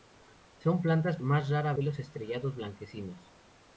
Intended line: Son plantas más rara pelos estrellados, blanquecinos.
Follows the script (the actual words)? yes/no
yes